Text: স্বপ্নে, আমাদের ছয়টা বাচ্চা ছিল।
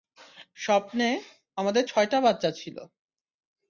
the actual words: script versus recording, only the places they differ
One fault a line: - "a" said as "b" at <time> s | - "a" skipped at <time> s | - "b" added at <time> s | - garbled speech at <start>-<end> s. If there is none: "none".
none